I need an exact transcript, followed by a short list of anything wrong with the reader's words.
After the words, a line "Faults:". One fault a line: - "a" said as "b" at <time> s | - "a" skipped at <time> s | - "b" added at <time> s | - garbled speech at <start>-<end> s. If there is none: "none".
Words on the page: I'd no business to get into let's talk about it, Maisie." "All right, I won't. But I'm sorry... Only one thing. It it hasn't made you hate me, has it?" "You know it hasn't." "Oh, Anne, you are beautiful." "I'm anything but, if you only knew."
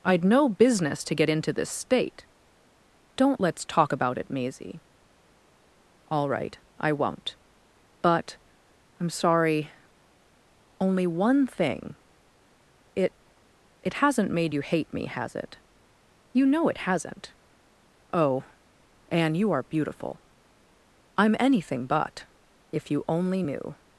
I'd no business to get into this state. Don't let's talk about it, Maisie." "All right, I won't. But I'm sorry... Only one thing. It it hasn't made you hate me, has it?" "You know it hasn't." "Oh, Anne, you are beautiful." "I'm anything but, if you only knew."
Faults:
- "this state Don't" added at 1.5 s